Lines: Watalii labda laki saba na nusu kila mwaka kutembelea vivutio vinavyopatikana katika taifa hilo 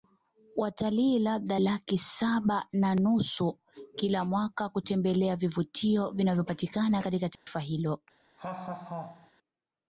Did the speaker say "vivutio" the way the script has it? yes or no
yes